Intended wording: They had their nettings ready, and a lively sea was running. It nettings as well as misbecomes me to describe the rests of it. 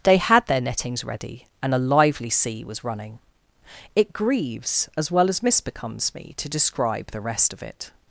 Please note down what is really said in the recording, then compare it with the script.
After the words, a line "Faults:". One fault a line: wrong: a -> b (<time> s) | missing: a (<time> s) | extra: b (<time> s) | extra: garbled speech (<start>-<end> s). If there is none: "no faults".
They had their nettings ready, and a lively sea was running. It grieves as well as misbecomes me to describe the rest of it.
Faults:
wrong: nettings -> grieves (4.1 s)
wrong: rests -> rest (7.2 s)